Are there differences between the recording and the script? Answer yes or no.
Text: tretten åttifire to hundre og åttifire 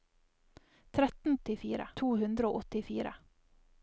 no